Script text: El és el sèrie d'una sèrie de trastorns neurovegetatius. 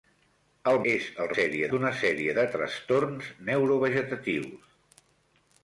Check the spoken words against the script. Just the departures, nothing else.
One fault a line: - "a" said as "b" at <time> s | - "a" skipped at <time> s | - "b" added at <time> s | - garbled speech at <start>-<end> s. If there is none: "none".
none